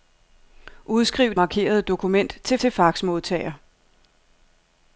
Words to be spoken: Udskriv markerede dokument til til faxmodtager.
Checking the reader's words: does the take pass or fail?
pass